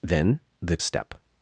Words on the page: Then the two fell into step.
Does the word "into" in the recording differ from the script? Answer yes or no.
yes